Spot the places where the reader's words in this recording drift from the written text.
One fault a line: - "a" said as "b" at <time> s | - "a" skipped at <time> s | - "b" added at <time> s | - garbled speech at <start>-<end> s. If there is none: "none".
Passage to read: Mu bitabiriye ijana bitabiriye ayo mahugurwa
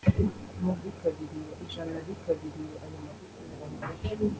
none